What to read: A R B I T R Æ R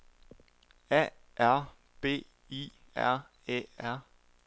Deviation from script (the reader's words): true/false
true